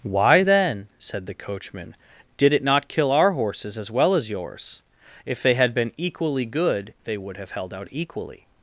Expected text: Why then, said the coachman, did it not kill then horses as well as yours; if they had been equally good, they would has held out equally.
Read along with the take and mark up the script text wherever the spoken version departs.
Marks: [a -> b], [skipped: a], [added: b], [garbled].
Why then, said the coachman, did it not kill [then -> our] horses as well as yours; if they had been equally good, they would [has -> have] held out equally.